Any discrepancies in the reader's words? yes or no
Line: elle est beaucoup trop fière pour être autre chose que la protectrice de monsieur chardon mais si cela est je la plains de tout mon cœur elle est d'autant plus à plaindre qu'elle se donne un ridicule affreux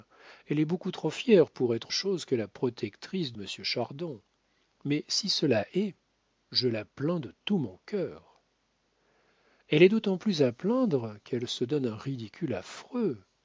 yes